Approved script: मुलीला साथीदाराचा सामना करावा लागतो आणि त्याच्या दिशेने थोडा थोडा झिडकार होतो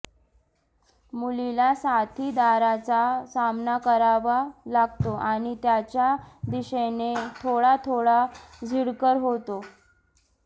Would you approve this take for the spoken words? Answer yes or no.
yes